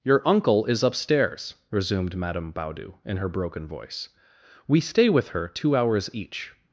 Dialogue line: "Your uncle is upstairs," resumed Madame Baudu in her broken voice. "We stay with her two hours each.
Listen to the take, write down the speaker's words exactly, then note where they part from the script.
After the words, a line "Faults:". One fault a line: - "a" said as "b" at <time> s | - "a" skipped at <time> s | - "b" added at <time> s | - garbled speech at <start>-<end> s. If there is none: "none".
"Your uncle is upstairs," resumed Madame Baudu in her broken voice. "We stay with her two hours each.
Faults:
none